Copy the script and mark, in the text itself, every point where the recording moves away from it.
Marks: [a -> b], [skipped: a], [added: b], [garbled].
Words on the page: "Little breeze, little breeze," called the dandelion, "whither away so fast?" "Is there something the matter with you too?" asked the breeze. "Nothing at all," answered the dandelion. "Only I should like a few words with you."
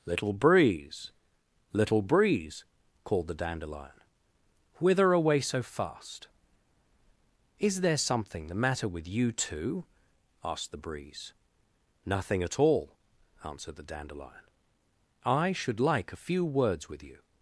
"Little breeze, little breeze," called the dandelion, "whither away so fast?" "Is there something the matter with you too?" asked the breeze. "Nothing at all," answered the dandelion. [skipped: "Only] I should like a few words with you."